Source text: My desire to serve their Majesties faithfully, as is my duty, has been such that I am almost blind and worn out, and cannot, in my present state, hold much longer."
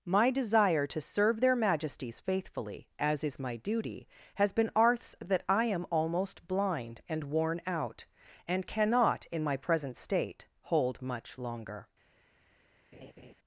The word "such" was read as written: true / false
false